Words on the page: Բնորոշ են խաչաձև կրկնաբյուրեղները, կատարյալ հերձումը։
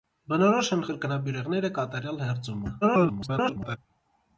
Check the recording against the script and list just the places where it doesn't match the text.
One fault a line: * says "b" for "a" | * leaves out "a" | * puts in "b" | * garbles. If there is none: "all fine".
* leaves out "խաչաձև"
* garbles